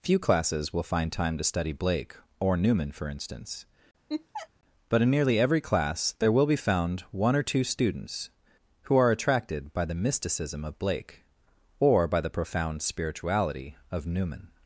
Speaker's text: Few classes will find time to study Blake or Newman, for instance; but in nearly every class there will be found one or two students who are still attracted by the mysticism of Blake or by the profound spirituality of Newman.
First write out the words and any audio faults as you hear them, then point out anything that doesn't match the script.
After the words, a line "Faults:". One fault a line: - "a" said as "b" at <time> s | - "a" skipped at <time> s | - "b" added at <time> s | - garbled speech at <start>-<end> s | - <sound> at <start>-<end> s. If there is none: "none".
Few classes will find time to study Blake or Newman, for instance; but in nearly every class there will be found one or two students who are attracted by the mysticism of Blake or by the profound spirituality of Newman.
Faults:
- laugh at 4.1-4.5 s
- "still" skipped at 9.1 s